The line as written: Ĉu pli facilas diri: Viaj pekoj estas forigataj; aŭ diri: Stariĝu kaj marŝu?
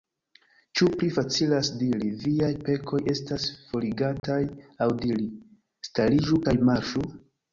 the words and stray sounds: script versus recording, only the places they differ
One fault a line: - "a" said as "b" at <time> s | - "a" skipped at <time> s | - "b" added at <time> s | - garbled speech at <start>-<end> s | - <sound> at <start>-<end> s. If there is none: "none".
- dropout at 4.2-4.2 s